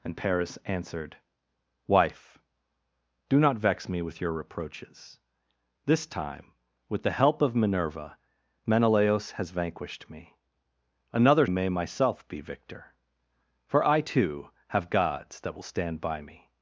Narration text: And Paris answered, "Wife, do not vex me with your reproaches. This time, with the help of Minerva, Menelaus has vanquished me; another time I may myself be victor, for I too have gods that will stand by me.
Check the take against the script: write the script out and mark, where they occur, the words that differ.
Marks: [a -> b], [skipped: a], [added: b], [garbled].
And Paris answered, "Wife, do not vex me with your reproaches. This time, with the help of Minerva, Menelaus has vanquished me; another [skipped: time I] may myself be victor, for I too have gods that will stand by me.